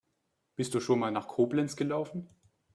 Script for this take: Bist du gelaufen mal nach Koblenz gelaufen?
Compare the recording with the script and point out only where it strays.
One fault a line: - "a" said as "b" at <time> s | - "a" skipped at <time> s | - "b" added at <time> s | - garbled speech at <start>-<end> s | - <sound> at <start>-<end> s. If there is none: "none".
- "gelaufen" said as "schon" at 0.8 s